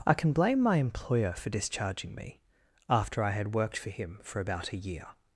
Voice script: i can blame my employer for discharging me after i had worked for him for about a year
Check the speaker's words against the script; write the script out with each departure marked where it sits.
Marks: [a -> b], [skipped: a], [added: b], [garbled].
i can blame my employer for discharging me after i had worked for him for about a year